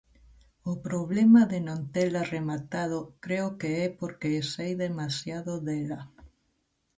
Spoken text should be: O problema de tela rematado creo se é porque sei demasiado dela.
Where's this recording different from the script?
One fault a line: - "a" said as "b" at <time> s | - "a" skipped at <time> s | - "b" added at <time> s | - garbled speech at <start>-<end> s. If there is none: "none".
- "non" added at 1.7 s
- "se" said as "que" at 3.6 s